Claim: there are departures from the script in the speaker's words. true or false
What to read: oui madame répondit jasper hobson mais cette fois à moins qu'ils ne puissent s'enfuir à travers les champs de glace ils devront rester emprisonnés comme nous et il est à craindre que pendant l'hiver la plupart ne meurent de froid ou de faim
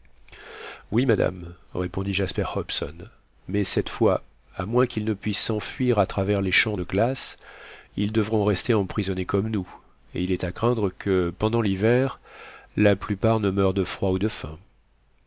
false